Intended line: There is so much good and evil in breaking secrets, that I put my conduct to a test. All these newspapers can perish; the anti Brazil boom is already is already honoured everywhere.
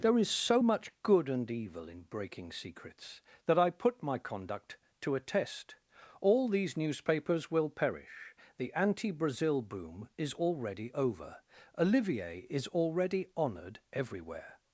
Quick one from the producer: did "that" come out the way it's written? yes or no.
yes